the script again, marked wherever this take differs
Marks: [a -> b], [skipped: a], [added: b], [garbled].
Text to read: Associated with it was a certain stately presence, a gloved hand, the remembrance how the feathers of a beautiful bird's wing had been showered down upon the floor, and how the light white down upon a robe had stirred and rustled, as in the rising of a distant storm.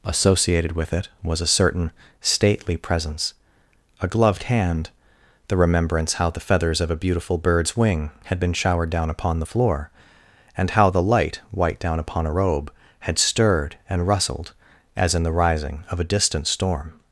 Associated with it was a certain stately presence, a gloved hand, the remembrance how the feathers of a beautiful bird's wing had been showered down upon the floor, and how the light white down upon a robe had stirred and rustled, as in the rising of a distant storm.